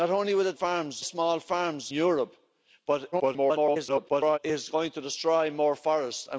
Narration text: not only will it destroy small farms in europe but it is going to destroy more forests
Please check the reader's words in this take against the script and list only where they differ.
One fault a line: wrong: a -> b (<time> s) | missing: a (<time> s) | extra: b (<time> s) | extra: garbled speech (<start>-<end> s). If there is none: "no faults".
wrong: destroy -> farms (0.5 s)
missing: in (1.9 s)
extra: garbled speech (3.1-4.4 s)